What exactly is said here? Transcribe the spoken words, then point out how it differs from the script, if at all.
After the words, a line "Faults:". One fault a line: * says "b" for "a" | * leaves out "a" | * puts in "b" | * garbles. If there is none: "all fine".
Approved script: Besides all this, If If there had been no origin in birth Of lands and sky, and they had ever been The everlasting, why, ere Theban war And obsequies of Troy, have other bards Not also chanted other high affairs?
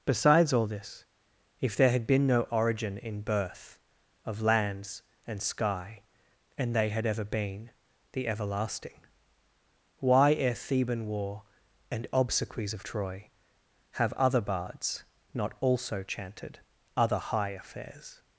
Besides all this, If there had been no origin in birth Of lands and sky, and they had ever been The everlasting, why, ere Theban war And obsequies of Troy, have other bards Not also chanted other high affairs?
Faults:
* leaves out "If"